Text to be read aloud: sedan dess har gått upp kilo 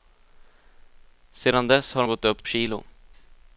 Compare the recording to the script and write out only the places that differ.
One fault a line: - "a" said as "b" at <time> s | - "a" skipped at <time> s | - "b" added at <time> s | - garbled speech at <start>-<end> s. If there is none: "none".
none